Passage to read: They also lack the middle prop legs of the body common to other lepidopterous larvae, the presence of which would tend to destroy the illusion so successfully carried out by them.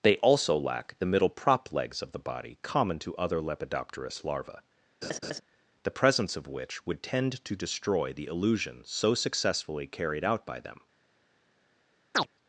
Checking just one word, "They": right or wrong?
right